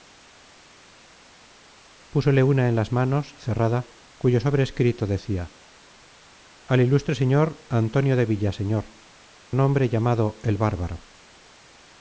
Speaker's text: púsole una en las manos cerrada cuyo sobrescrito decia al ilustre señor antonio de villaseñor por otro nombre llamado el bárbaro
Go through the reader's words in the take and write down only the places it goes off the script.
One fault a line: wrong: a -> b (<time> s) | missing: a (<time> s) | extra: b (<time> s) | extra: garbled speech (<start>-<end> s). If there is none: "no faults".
missing: por otro (9.0 s)